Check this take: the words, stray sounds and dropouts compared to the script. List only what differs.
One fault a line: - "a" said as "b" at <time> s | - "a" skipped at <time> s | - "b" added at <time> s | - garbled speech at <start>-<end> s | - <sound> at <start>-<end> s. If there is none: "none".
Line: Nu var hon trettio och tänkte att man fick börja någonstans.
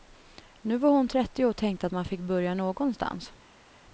none